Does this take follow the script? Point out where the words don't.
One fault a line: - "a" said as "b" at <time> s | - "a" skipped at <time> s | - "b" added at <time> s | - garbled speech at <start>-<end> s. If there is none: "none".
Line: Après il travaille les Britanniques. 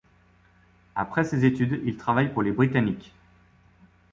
- "ses études" added at 1.2 s
- "pour" added at 2.3 s